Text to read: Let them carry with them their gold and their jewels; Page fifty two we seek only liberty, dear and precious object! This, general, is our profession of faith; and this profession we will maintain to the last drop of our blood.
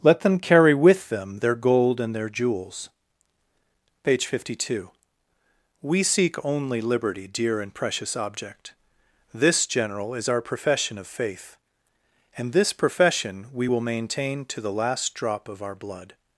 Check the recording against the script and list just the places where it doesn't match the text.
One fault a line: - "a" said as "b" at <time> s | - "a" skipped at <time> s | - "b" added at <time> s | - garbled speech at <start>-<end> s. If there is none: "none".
none